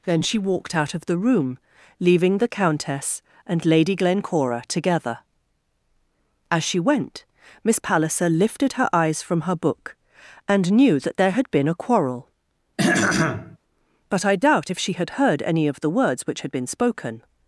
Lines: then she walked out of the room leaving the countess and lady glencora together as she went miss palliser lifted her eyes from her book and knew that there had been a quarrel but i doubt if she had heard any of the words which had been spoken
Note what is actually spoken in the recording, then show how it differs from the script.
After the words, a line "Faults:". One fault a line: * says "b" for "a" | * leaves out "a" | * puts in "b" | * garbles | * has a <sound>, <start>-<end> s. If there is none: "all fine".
then she walked out of the room leaving the countess and lady glencora together as she went miss palliser lifted her eyes from her book and knew that there had been a quarrel but i doubt if she had heard any of the words which had been spoken
Faults:
* has a throat clearing, 12.8-13.6 s